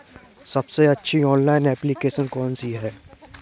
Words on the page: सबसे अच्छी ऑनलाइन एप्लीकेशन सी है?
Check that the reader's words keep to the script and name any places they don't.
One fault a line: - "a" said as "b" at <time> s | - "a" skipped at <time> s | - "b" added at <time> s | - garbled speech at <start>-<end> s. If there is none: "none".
- "कौन" added at 2.3 s